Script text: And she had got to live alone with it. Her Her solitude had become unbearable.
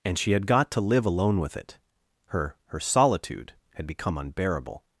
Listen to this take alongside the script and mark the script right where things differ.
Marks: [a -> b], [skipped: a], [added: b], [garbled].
And she had got to live alone with it. Her Her solitude had become unbearable.